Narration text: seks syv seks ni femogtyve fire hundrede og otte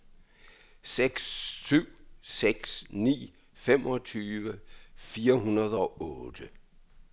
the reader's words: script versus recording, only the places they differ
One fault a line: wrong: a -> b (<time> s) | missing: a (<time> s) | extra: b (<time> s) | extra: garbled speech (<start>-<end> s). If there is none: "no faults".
no faults